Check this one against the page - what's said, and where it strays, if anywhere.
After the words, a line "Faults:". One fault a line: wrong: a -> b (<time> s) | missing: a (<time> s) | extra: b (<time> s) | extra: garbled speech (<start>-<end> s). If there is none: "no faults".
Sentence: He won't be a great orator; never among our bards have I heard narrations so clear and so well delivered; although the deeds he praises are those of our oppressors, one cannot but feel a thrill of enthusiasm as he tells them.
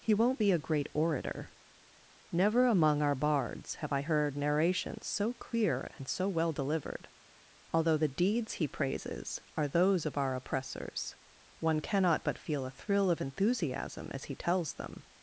He won't be a great orator; never among our bards have I heard narrations so clear and so well delivered; although the deeds he praises are those of our oppressors, one cannot but feel a thrill of enthusiasm as he tells them.
Faults:
no faults